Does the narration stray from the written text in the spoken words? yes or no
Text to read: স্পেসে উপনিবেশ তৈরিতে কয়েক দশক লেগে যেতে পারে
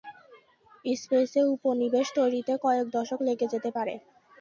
no